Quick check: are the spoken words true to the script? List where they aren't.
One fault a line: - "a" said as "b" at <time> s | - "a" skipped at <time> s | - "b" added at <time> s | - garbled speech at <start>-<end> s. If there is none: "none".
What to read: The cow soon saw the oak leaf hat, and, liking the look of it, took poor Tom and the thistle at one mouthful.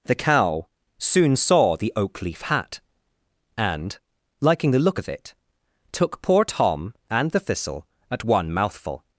none